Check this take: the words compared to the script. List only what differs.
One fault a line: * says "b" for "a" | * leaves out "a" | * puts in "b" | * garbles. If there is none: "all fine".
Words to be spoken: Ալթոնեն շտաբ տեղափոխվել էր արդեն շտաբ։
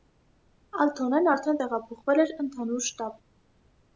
* says "արդեն" for "շտաբ"
* says "ընդհանուր" for "արդեն"